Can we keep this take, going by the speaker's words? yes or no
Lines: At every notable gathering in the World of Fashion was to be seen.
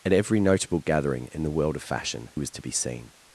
yes